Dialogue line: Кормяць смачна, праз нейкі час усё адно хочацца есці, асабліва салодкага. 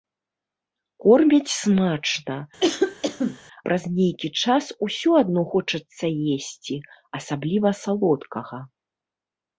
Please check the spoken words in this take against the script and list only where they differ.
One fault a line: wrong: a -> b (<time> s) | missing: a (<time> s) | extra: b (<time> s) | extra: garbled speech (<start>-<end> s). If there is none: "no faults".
no faults